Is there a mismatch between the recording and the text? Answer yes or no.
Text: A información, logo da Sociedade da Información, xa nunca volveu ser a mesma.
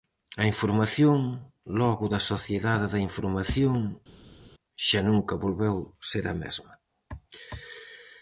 no